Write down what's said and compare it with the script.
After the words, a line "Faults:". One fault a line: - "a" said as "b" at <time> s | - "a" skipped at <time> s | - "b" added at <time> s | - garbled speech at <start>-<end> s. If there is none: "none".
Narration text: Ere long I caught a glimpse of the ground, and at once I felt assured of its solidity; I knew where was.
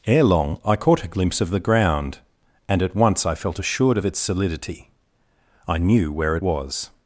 Ere long I caught a glimpse of the ground, and at once I felt assured of its solidity; I knew where was.
Faults:
none